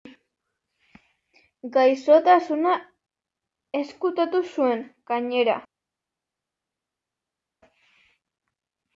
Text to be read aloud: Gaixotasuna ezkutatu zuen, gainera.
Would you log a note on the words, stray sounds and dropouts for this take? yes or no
no